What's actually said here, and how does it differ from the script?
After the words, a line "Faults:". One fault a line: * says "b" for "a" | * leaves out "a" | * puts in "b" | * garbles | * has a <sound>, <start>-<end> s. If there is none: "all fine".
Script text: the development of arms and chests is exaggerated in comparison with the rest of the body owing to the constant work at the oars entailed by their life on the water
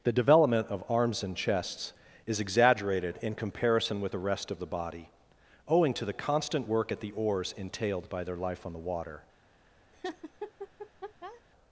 the development of arms and chests is exaggerated in comparison with the rest of the body owing to the constant work at the oars entailed by their life on the water
Faults:
* has a laugh, 9.9-11.4 s